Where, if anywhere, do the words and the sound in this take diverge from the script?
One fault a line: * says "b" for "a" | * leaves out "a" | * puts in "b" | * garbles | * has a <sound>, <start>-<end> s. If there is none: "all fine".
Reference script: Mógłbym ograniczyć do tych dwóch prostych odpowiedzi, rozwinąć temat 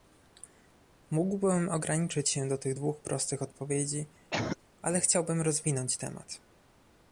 * puts in "się"
* has a cough, 4.3-4.6 s
* puts in "ale chciałbym"